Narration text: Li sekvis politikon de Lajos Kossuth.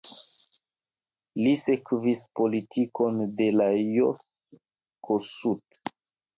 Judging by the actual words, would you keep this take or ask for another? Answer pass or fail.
pass